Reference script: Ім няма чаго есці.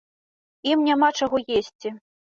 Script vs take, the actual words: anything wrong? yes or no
no